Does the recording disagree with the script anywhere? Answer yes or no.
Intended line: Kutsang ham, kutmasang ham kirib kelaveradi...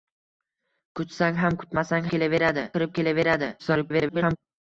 yes